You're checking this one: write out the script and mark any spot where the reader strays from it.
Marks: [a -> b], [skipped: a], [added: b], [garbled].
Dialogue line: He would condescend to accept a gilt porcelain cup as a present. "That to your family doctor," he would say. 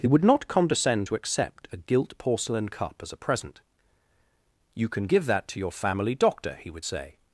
He would [added: not] condescend to accept a gilt porcelain cup as a present. [added: You can give] "That to your family doctor," he would say.